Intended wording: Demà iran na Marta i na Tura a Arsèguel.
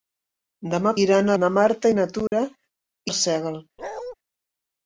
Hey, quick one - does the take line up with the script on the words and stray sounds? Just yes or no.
no